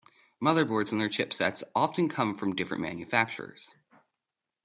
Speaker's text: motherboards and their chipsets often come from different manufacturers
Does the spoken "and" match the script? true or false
true